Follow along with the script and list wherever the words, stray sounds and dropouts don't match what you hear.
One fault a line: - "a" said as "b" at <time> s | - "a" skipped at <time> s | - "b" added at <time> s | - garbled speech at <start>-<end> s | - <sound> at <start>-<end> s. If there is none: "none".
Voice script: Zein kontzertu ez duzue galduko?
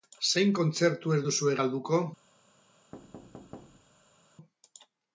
- thud at 2.9-4.2 s